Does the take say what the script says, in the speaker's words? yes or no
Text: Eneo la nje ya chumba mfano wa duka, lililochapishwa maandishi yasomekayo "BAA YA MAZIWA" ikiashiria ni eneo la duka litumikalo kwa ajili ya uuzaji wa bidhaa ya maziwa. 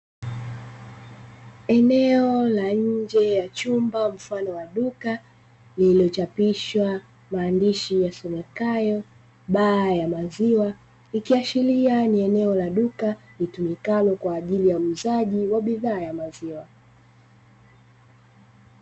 yes